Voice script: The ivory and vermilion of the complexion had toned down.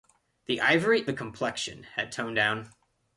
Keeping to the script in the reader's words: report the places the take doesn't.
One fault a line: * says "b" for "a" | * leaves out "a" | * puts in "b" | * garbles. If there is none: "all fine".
* leaves out "and vermilion of"